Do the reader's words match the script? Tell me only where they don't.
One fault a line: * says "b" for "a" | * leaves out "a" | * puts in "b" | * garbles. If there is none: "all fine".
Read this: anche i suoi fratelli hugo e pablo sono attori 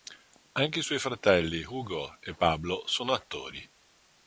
all fine